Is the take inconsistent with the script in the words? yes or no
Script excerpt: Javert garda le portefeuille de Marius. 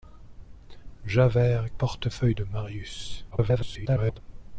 yes